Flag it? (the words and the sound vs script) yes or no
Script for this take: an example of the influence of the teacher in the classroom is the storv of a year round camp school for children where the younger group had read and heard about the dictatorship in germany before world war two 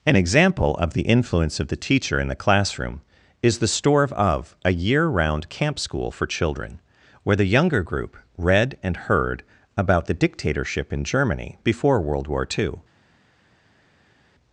yes